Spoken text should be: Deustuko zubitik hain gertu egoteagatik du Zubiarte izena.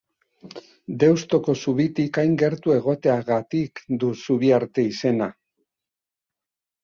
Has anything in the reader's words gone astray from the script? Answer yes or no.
no